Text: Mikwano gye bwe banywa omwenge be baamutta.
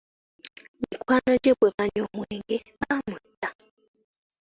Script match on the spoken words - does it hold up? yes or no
no